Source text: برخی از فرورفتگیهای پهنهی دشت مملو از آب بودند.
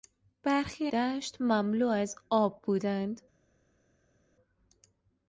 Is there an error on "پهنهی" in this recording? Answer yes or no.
yes